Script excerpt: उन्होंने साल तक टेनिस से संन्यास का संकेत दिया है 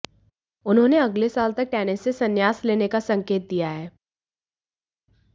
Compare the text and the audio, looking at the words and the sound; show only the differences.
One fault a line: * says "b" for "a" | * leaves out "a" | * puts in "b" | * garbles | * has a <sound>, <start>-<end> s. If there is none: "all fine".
* puts in "अगले"
* puts in "लेने"